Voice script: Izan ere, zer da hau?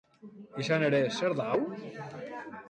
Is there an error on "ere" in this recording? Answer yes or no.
no